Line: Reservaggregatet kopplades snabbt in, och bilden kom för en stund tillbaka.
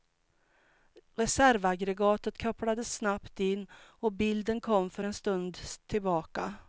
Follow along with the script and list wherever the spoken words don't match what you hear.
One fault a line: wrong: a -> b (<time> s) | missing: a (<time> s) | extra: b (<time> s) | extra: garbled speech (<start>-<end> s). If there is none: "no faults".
no faults